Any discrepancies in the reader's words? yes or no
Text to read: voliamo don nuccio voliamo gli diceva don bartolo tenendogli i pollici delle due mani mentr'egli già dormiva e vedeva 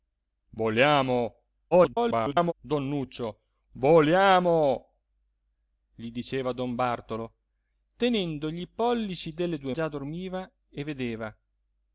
yes